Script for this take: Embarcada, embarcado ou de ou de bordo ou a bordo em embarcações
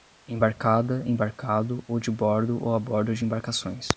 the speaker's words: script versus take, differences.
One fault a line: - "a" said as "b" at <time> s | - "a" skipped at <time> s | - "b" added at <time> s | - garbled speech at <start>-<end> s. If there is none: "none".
- "ou de" skipped at 2.1 s
- "em" said as "de" at 3.1 s